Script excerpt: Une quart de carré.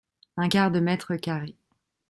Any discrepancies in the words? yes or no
yes